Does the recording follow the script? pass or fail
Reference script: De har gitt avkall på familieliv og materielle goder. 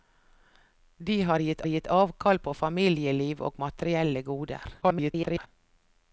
fail